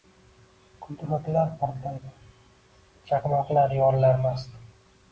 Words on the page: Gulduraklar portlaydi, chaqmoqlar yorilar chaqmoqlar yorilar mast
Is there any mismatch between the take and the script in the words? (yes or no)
yes